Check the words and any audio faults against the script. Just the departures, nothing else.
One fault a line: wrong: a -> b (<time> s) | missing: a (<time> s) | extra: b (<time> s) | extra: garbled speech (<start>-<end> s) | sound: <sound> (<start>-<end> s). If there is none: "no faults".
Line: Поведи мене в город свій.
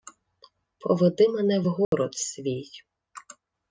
sound: dropout (1.8-1.9 s)